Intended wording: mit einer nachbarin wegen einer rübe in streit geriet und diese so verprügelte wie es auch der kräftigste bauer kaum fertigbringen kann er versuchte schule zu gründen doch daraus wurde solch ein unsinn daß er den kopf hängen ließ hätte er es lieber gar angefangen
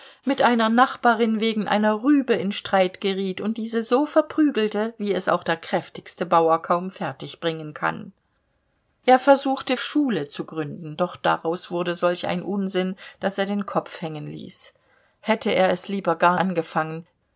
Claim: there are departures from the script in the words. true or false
false